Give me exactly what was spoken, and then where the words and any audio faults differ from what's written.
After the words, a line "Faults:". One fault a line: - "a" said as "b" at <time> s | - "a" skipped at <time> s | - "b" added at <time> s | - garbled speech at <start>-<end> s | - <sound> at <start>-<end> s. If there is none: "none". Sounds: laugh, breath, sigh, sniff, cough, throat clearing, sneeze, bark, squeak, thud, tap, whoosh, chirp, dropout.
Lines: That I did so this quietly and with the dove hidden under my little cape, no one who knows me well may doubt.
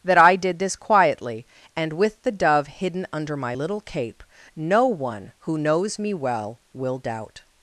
That I did this quietly and with the dove hidden under my little cape, no one who knows me well will doubt.
Faults:
- "so" skipped at 0.6 s
- "may" said as "will" at 6.7 s